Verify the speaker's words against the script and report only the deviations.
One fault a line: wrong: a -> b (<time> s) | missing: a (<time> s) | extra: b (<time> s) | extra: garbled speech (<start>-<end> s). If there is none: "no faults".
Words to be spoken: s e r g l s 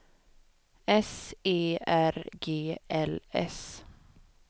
no faults